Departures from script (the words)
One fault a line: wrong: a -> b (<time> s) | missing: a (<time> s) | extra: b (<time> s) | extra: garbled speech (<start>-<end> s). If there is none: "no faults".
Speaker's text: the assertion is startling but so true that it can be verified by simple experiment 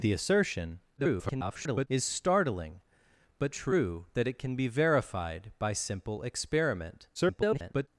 extra: garbled speech (1.0-1.9 s)
missing: so (3.5 s)
extra: garbled speech (7.1-7.9 s)